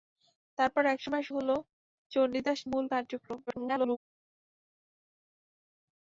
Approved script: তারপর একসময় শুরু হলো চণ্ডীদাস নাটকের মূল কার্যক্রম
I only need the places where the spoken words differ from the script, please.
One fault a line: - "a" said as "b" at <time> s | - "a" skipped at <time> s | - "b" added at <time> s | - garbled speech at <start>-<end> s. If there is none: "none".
- "শুরু" skipped at 1.2 s
- "নাটকের" skipped at 2.6 s
- garbled speech at 3.5-4.0 s